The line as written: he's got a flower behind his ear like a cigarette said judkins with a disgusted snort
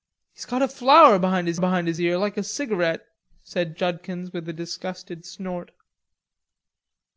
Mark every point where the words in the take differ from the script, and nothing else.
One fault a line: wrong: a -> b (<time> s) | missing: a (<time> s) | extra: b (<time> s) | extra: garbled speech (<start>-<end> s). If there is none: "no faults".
extra: behind his (1.6 s)